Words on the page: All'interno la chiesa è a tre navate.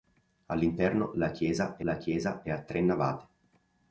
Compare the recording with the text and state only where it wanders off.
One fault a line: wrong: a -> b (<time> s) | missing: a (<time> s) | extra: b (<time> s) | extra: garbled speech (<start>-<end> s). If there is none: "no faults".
extra: la chiesa è (1.8 s)